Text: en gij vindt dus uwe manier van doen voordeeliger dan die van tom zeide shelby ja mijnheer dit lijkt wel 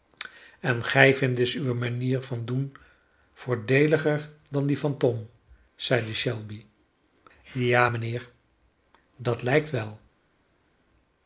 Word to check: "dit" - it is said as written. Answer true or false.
false